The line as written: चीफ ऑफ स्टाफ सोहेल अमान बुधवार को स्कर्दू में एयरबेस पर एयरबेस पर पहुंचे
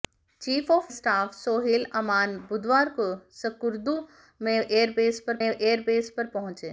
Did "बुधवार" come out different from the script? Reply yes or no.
no